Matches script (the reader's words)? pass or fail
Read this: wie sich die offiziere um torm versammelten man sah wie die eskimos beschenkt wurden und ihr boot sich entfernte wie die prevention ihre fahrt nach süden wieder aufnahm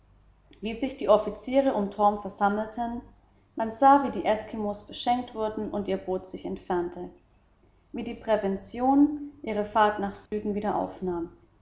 pass